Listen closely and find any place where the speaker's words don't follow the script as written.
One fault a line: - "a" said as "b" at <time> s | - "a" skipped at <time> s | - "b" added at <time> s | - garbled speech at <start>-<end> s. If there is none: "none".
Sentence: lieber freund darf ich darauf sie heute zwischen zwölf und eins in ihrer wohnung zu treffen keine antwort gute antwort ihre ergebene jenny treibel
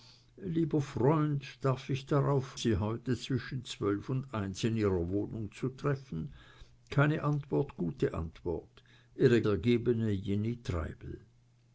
none